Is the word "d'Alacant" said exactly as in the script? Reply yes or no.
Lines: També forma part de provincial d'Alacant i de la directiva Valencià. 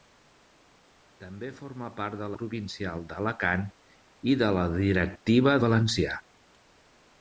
yes